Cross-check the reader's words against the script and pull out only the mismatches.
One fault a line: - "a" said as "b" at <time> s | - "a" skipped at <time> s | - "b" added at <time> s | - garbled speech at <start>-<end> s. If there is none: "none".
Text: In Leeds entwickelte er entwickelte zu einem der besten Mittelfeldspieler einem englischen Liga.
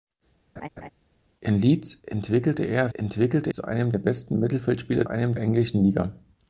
none